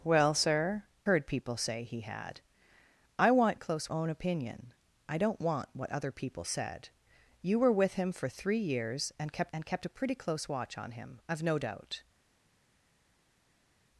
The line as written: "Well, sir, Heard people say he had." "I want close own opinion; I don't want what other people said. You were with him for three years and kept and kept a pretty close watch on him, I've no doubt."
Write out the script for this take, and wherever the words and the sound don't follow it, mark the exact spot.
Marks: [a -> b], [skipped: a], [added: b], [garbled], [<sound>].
"Well, sir, Heard people say he had." "I want close own opinion; I don't want what other people said. You were with him for three years and kept and kept a pretty close watch on him, I've no doubt."